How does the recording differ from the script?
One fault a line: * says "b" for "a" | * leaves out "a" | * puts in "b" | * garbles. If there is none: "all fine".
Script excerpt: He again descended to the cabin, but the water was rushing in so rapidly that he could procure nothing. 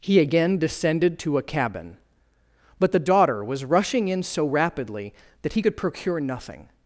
* says "a" for "the"
* says "daughter" for "water"